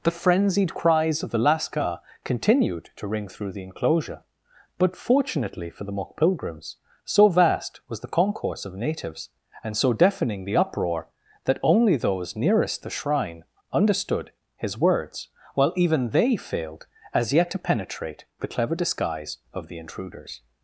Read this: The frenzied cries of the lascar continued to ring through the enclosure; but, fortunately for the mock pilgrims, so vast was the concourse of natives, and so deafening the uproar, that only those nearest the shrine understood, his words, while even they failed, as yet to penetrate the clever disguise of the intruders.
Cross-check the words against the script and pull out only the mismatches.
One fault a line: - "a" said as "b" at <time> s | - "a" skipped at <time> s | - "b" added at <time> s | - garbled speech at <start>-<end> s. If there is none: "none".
none